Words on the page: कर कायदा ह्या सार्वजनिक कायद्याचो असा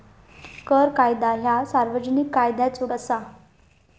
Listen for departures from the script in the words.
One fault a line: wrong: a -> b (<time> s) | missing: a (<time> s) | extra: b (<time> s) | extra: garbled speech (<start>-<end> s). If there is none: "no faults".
no faults